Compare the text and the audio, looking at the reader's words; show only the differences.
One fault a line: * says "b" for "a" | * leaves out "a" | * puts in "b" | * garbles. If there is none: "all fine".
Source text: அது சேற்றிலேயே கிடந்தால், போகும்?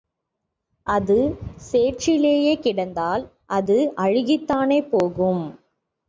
* puts in "அது அழுகித்தானே"